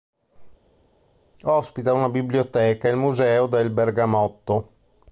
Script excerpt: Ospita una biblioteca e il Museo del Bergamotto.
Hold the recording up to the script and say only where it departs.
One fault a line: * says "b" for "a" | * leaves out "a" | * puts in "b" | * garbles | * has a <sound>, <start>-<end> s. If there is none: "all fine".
all fine